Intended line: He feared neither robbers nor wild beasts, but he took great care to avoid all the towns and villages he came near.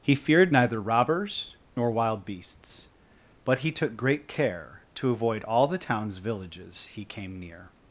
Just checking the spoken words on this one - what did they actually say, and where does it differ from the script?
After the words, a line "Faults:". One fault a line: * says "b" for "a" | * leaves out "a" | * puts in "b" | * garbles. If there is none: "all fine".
He feared neither robbers nor wild beasts, but he took great care to avoid all the towns villages he came near.
Faults:
* leaves out "and"